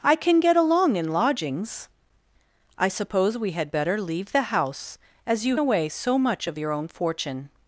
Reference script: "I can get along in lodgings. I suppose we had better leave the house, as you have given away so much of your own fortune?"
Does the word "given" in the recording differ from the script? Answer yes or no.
yes